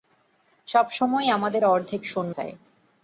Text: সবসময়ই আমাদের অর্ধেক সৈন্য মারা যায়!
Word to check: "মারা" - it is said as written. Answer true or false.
false